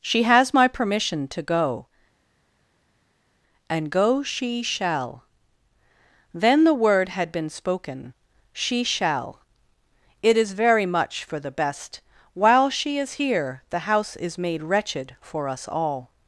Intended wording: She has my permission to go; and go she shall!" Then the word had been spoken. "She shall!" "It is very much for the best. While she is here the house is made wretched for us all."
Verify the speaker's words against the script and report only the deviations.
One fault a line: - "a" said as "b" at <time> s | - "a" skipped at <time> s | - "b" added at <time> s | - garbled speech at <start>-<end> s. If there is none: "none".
none